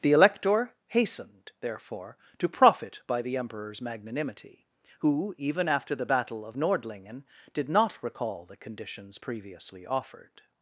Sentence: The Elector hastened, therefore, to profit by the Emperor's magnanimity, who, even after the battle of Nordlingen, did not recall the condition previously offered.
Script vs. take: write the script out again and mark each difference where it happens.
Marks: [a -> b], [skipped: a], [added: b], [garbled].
The Elector hastened, therefore, to profit by the Emperor's magnanimity, who, even after the battle of Nordlingen, did not recall the [condition -> conditions] previously offered.